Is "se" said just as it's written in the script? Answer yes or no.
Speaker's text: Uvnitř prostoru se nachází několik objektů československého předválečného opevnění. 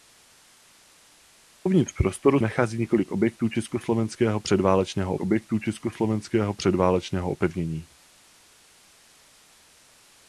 no